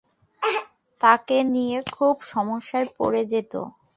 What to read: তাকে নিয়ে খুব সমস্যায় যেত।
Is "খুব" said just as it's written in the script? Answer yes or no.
yes